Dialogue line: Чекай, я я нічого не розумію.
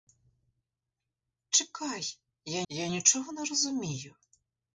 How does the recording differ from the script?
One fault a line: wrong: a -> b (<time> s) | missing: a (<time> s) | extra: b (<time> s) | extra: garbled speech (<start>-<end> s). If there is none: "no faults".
no faults